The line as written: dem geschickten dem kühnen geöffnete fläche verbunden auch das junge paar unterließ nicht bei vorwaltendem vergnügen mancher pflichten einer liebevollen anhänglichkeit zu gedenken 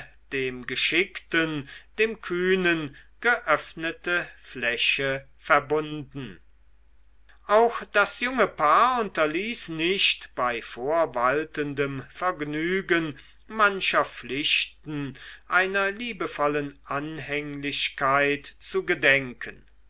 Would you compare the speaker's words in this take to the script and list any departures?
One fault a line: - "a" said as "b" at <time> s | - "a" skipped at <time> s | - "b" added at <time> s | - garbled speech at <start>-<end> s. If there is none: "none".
none